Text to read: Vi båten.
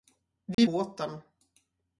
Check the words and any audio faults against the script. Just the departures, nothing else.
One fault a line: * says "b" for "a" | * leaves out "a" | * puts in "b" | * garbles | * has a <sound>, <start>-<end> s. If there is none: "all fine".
* has a dropout, 0.5-0.6 s